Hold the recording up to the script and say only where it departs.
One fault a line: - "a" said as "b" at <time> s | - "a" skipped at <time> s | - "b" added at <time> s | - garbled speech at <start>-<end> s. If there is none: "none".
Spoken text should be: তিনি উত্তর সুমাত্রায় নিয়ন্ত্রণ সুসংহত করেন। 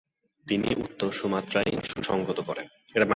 - "নিয়ন্ত্রণ" skipped at 1.7 s